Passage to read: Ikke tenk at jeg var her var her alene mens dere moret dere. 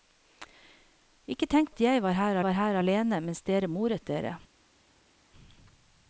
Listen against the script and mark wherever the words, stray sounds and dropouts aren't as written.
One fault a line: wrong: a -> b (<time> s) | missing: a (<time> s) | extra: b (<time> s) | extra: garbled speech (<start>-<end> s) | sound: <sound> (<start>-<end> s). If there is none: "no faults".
no faults